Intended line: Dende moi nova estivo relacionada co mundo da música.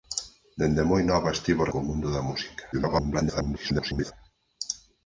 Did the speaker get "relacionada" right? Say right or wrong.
wrong